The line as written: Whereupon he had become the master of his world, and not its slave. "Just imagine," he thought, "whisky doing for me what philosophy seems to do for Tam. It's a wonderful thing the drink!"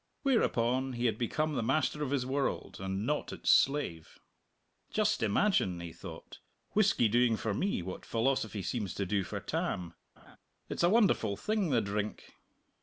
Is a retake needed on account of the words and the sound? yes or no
yes